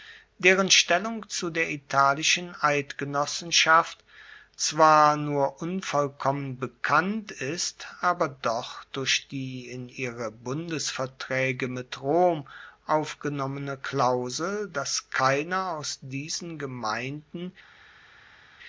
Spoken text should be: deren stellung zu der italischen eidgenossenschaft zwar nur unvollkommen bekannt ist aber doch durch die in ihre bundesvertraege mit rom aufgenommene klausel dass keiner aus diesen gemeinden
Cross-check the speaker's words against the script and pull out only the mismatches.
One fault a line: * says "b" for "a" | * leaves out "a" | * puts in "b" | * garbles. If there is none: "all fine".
all fine